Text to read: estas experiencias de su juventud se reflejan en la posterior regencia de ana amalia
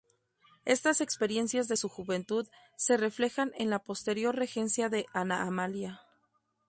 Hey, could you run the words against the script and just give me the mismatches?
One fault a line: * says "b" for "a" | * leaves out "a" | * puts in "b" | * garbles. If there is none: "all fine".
all fine